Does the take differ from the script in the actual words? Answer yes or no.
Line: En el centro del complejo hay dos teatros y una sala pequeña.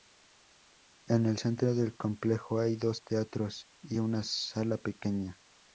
no